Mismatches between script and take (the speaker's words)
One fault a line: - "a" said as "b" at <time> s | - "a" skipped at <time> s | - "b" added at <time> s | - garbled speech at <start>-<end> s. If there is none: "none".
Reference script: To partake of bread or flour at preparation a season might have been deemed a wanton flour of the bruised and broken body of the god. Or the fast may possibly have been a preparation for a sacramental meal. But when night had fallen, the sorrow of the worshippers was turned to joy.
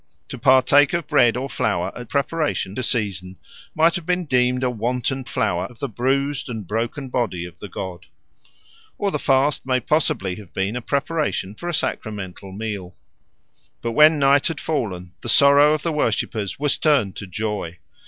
none